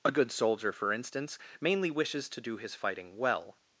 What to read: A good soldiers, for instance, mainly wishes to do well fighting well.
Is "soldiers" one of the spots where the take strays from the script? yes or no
yes